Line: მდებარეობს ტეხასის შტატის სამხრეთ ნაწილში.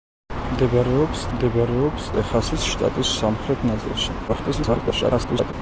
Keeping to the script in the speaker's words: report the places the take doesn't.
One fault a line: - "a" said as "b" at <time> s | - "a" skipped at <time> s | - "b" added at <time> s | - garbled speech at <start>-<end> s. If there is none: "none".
- "მდებარეობს" added at 1.3 s
- garbled speech at 4.3-5.5 s